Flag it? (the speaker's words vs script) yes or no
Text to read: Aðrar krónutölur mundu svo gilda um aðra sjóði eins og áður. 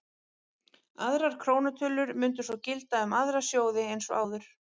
no